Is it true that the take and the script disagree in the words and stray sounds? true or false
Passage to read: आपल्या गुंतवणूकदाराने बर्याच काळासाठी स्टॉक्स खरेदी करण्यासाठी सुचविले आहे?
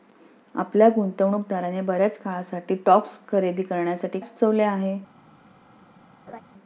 true